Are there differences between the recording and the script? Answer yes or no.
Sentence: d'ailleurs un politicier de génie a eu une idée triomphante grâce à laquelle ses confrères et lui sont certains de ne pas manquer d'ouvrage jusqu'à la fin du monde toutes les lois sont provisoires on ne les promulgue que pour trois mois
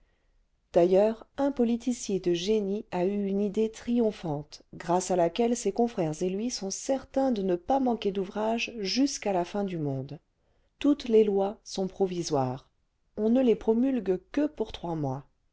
no